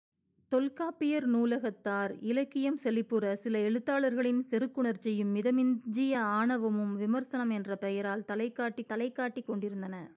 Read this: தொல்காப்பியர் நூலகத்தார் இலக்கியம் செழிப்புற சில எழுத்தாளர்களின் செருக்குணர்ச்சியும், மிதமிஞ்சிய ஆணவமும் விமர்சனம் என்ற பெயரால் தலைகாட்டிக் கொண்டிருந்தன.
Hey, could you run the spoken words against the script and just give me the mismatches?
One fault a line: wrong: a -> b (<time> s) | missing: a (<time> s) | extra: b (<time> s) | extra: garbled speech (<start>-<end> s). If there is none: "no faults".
extra: தலைகாட்டிக் (8.9 s)